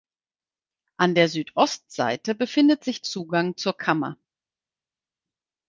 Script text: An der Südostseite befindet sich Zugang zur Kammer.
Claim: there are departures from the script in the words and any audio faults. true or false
false